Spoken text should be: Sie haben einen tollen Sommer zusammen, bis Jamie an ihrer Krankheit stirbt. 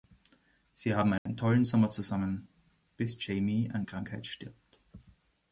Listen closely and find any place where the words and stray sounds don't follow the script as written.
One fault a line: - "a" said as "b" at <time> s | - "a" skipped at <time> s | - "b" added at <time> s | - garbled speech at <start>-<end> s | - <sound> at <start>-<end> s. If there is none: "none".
- dropout at 1.2-1.3 s
- "ihrer" skipped at 3.9 s